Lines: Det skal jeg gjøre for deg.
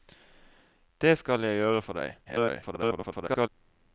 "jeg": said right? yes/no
yes